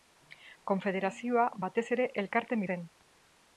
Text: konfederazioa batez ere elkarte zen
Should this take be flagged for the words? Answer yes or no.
no